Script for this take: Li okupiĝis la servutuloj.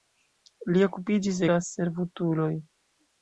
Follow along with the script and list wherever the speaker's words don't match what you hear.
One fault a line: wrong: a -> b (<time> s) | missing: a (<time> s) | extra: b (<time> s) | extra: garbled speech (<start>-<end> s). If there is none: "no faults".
no faults